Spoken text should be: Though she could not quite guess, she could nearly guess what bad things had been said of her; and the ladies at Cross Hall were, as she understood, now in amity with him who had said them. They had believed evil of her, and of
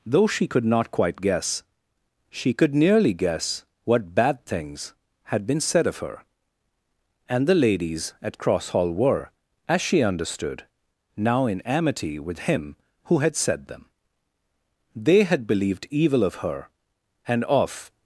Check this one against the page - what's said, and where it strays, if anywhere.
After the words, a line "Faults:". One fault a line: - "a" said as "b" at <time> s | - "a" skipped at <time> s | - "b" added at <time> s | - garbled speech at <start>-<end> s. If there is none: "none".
Though she could not quite guess, she could nearly guess what bad things had been said of her; and the ladies at Cross Hall were, as she understood, now in amity with him who had said them. They had believed evil of her, and of
Faults:
none